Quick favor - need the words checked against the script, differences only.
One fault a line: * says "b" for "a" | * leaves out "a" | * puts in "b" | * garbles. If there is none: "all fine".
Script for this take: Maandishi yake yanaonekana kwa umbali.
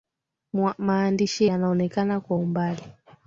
* leaves out "yake"